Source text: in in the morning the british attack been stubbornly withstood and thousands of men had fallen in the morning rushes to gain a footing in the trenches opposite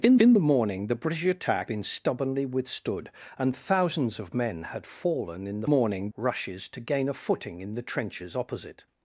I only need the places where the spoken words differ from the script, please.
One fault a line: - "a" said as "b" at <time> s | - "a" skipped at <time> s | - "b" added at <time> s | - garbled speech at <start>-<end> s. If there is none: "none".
none